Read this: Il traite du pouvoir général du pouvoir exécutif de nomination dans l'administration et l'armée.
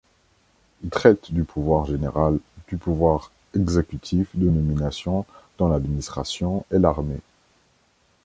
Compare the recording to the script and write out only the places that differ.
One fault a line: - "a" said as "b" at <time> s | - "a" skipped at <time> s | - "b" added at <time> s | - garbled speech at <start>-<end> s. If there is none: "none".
none